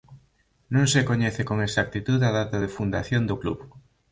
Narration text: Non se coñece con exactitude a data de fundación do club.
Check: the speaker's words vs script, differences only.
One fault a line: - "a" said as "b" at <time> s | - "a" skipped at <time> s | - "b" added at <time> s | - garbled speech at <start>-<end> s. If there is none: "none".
none